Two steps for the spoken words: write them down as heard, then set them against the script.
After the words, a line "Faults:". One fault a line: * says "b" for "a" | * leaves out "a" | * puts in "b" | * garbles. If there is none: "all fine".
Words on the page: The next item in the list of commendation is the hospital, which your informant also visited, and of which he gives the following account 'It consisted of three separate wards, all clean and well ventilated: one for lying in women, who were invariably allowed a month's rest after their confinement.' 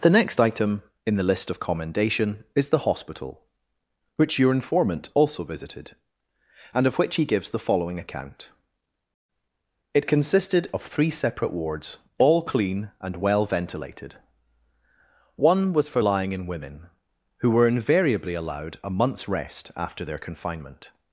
The next item in the list of commendation is the hospital, which your informant also visited, and of which he gives the following account 'It consisted of three separate wards, all clean and well ventilated: one was for lying in women, who were invariably allowed a month's rest after their confinement.'
Faults:
* puts in "was"